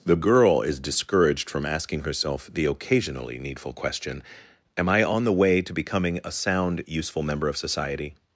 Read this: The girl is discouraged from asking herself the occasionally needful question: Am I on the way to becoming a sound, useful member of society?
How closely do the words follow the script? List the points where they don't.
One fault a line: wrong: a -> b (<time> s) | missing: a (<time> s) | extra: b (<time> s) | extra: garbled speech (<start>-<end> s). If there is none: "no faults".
no faults